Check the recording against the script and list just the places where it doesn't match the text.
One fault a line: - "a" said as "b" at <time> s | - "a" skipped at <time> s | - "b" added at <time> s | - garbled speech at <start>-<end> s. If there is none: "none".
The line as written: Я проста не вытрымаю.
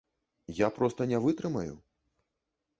none